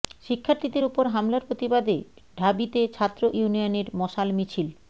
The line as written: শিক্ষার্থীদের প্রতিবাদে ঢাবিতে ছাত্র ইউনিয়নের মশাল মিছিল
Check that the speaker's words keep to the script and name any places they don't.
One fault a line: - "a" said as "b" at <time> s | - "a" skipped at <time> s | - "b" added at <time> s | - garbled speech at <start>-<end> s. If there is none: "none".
- "ওপর হামলার" added at 0.8 s